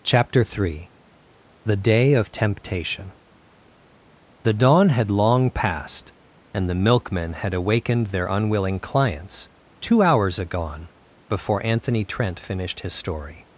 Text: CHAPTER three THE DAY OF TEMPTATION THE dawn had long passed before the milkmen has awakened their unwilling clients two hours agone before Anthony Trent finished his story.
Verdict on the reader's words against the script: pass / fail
fail